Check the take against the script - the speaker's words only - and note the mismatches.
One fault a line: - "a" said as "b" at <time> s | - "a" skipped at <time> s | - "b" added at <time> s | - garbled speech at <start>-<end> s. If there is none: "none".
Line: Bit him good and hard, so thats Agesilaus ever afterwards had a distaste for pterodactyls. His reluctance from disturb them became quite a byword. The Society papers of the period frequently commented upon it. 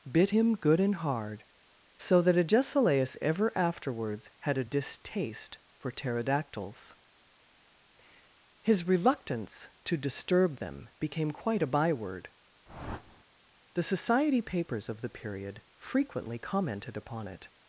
- "thats" said as "that" at 2.2 s
- "from" said as "to" at 9.8 s